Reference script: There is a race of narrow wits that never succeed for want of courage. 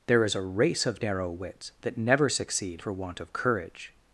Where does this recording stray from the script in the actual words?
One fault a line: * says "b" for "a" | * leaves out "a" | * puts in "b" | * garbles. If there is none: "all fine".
all fine